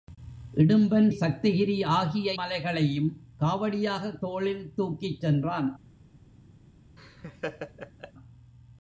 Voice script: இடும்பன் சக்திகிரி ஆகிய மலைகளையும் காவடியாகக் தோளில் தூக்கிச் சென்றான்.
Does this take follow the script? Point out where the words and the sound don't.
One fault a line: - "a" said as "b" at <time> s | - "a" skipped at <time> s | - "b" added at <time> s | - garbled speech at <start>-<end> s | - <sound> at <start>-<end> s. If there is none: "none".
- laugh at 7.0-8.1 s